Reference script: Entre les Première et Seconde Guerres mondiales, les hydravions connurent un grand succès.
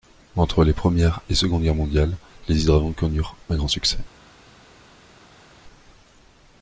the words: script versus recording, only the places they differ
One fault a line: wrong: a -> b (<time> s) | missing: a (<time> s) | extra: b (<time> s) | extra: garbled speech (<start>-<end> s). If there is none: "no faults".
no faults